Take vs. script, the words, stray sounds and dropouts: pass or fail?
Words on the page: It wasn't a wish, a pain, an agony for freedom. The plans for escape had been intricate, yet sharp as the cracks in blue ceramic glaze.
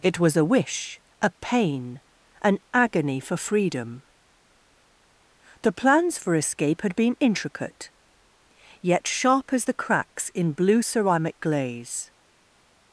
fail